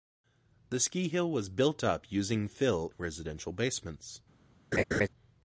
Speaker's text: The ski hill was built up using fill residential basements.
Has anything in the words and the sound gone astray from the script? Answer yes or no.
yes